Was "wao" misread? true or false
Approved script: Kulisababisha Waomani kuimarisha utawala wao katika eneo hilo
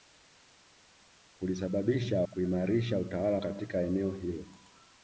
true